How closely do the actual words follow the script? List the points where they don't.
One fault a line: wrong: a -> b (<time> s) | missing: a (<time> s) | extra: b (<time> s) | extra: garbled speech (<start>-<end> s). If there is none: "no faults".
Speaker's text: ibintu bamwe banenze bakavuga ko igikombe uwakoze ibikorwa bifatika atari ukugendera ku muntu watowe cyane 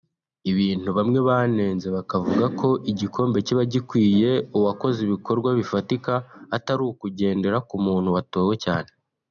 extra: kiba gikwiye (3.5 s)